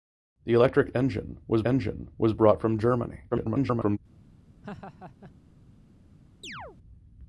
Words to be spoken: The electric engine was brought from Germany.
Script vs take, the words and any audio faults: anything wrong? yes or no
yes